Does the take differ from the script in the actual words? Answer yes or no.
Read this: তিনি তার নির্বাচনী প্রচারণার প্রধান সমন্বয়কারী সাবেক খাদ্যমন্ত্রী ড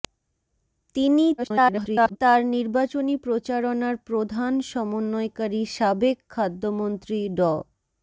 yes